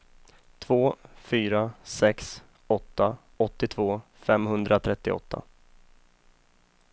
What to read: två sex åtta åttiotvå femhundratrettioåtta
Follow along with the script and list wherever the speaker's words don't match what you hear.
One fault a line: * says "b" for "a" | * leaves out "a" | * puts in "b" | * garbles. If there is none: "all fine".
* puts in "fyra"